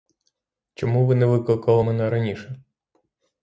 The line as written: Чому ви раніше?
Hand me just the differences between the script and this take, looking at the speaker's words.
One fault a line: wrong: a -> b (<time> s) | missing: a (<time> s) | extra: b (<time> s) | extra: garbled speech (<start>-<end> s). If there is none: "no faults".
extra: не викликали мене (1.1 s)